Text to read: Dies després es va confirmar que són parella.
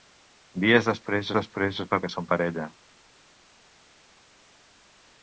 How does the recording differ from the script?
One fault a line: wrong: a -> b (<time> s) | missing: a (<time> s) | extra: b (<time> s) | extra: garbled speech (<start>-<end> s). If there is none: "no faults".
extra: després (1.4 s)
missing: confirmar (2.0 s)